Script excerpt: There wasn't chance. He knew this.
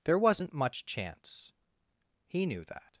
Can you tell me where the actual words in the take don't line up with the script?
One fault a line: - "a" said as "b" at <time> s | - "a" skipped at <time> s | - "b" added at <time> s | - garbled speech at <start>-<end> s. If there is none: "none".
- "much" added at 0.5 s
- "this" said as "that" at 2.6 s